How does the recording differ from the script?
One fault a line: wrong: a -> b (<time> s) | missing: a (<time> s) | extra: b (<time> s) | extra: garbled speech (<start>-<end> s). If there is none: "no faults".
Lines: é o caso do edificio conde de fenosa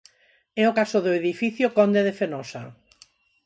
no faults